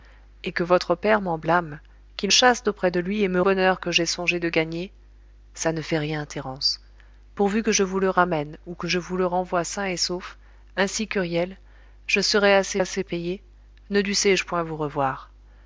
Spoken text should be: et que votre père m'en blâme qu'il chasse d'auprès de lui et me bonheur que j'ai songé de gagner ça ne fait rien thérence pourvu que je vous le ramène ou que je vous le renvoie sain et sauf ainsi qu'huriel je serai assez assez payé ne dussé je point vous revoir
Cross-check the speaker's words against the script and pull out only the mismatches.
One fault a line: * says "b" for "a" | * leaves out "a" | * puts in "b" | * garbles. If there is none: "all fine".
all fine